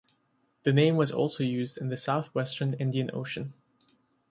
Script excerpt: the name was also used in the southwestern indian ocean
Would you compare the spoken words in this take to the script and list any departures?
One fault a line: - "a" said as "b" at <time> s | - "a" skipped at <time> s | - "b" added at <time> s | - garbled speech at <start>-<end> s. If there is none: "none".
none